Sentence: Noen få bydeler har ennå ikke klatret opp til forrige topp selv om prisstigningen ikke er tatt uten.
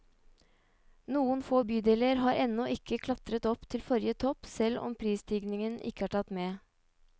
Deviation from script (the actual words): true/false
true